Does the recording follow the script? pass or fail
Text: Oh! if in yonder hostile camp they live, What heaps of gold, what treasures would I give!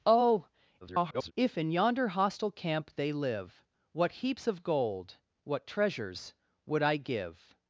fail